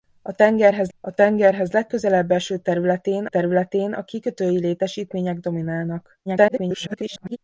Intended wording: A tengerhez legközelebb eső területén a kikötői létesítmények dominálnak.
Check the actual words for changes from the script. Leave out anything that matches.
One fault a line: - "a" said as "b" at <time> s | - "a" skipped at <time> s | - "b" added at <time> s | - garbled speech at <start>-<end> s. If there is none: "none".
- "a tengerhez" added at 1.0 s
- "területén" added at 3.2 s
- garbled speech at 6.3-7.4 s